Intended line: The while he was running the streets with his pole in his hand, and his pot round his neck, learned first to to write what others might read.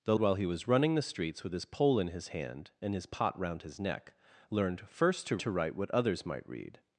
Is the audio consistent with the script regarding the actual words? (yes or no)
yes